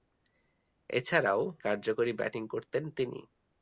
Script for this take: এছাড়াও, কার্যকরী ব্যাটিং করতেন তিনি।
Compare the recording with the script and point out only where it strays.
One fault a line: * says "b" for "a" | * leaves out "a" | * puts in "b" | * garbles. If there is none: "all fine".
all fine